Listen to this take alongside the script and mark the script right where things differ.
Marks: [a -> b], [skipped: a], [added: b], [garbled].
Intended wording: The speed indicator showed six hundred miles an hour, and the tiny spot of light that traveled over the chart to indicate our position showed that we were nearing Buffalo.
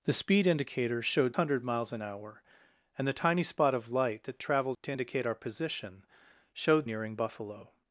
The speed indicator showed [skipped: six] hundred miles an hour, and the tiny spot of light that traveled [skipped: over the chart] to indicate our position showed [skipped: that we were] nearing Buffalo.